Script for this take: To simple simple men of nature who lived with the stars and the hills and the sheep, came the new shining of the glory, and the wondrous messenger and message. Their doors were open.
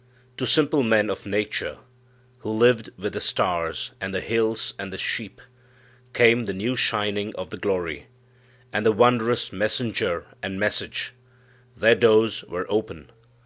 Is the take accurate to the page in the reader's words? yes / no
no